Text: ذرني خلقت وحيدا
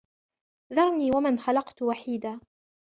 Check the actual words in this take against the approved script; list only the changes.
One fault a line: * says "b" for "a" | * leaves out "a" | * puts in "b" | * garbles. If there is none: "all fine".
* puts in "ومن"